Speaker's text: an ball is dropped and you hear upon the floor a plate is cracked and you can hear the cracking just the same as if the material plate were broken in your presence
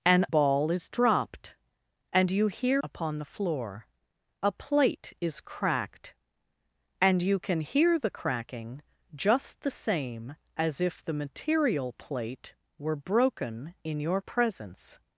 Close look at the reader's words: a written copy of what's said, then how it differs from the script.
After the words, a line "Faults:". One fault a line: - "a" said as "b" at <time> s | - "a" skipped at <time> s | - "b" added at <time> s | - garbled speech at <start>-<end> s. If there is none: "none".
an ball is dropped and you hear upon the floor a plate is cracked and you can hear the cracking just the same as if the material plate were broken in your presence
Faults:
none